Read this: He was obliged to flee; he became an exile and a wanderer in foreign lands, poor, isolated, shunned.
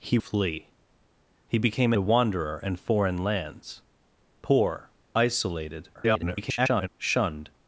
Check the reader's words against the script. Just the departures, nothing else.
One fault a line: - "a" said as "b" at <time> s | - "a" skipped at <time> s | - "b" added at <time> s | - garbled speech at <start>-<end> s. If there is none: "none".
- "was obliged to" skipped at 0.2 s
- "an exile and" skipped at 1.9 s
- garbled speech at 5.9-6.9 s